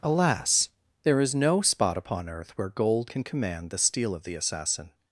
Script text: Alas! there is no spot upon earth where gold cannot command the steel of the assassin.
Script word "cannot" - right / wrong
wrong